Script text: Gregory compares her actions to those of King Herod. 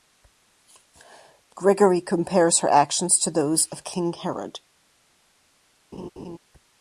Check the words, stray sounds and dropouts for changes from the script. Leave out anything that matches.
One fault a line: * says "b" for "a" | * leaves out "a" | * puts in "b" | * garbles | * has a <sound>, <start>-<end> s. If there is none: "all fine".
* has a laugh, 5.9-6.4 s